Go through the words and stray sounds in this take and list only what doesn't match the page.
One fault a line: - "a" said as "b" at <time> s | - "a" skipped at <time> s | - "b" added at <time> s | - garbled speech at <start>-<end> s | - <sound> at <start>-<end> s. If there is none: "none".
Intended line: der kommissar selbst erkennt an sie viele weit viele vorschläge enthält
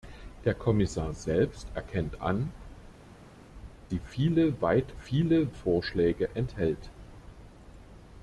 none